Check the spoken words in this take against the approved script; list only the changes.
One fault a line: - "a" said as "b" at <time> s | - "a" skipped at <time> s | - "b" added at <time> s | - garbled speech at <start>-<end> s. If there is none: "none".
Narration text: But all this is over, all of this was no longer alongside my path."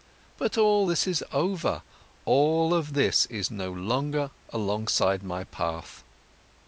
- "was" said as "is" at 3.3 s